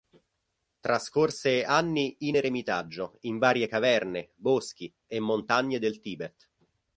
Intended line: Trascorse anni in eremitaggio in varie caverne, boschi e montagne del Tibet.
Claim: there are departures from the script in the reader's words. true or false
false